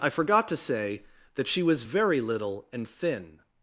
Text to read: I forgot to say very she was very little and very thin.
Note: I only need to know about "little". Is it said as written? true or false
true